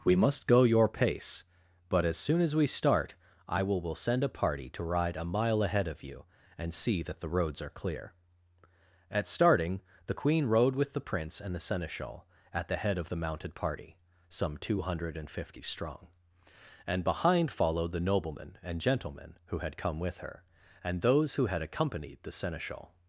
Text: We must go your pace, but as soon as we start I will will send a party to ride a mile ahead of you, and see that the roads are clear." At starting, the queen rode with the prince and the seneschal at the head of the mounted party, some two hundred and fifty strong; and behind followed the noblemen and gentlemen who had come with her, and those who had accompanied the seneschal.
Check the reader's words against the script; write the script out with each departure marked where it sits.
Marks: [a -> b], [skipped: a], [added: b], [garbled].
We must go your pace, but as soon as we start I will will send a party to ride a mile ahead of you, and see that the roads are clear." At starting, the queen rode with the prince and the seneschal at the head of the mounted party, some two hundred and fifty strong; and behind followed the noblemen and gentlemen who had come with her, and those who had accompanied the seneschal.